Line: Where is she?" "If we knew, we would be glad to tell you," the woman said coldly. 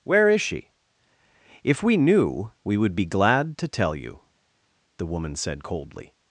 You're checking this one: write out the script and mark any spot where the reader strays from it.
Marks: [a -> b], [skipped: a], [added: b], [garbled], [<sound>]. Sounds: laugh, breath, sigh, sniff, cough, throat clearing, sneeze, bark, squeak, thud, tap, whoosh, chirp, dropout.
Where is she?" "If we knew, we would be glad to tell you," the woman said coldly.